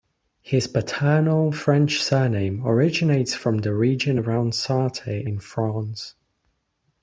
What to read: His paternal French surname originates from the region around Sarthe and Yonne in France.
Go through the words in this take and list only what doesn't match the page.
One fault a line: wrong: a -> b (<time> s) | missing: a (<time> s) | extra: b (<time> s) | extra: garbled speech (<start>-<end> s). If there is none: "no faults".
missing: and Yonne (5.3 s)